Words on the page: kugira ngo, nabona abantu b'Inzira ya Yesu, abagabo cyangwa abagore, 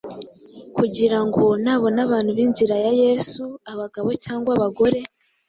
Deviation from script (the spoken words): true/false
false